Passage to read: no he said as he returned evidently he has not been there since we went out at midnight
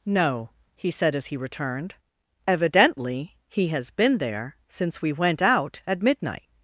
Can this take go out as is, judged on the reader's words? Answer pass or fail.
fail